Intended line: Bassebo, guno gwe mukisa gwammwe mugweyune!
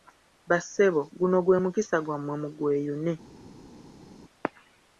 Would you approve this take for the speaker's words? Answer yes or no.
yes